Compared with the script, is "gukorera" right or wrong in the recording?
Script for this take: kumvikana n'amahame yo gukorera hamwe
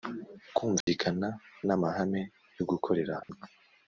right